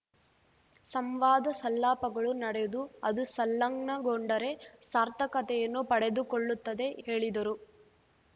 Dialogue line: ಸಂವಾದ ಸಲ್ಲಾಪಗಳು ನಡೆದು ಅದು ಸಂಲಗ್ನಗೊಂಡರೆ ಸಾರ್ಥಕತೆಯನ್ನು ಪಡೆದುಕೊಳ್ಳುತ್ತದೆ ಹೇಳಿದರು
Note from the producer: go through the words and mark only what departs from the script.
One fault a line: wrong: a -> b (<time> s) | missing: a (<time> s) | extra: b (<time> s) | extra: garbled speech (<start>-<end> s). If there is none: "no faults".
no faults